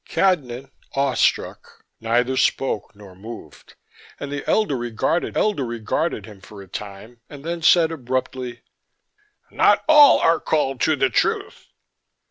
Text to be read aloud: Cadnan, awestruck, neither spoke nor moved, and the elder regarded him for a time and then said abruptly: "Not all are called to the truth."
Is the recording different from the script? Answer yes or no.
yes